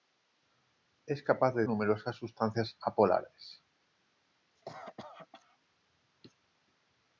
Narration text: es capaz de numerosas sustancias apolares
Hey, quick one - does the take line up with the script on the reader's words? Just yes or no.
yes